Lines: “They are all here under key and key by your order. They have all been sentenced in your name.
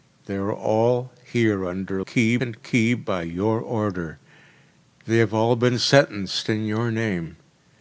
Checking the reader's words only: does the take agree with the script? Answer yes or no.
yes